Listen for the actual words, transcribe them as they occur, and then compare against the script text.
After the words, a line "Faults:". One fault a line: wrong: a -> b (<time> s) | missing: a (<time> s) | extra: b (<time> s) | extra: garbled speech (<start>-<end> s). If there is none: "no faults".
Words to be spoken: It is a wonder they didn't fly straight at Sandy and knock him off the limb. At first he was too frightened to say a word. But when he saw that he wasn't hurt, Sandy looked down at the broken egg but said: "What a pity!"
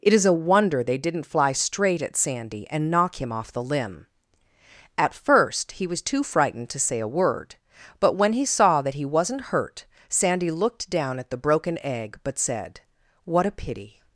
It is a wonder they didn't fly straight at Sandy and knock him off the limb. At first he was too frightened to say a word. But when he saw that he wasn't hurt, Sandy looked down at the broken egg but said: "What a pity!"
Faults:
no faults